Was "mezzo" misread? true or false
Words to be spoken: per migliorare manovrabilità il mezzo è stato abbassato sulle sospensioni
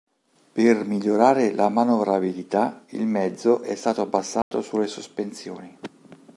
false